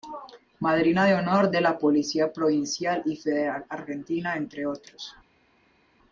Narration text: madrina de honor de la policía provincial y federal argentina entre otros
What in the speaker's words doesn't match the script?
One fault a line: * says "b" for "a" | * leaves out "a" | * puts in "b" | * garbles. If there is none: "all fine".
all fine